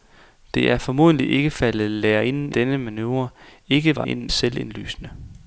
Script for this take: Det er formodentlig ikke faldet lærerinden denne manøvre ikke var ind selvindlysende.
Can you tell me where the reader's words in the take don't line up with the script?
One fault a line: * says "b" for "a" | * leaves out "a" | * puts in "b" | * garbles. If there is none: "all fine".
all fine